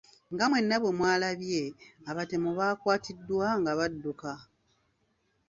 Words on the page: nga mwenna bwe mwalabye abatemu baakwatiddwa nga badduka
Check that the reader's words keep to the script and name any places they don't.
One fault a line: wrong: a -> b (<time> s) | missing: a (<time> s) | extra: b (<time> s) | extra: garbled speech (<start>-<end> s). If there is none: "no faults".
no faults